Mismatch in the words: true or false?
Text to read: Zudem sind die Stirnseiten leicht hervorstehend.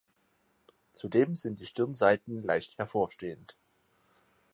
false